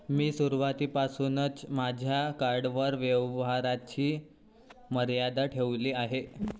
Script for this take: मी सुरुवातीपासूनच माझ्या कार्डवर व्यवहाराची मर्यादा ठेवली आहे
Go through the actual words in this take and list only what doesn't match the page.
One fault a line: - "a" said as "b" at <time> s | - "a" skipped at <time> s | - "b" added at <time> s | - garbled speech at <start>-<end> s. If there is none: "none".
none